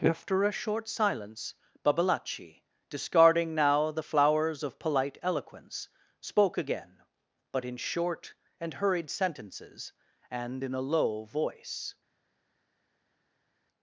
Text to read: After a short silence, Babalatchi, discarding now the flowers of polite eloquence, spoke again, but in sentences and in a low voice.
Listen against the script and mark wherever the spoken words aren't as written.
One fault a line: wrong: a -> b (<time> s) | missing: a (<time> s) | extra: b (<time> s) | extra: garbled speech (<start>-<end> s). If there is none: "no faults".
extra: short and hurried (7.8 s)